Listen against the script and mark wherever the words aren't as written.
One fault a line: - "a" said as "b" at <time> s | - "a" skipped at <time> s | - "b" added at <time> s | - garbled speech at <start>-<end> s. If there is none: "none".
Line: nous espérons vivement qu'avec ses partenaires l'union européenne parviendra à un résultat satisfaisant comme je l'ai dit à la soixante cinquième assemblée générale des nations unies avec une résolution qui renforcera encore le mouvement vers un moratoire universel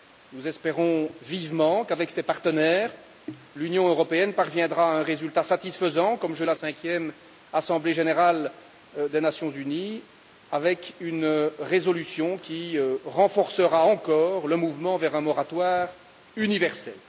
- "l'ai dit" skipped at 6.5 s
- "soixante" skipped at 6.6 s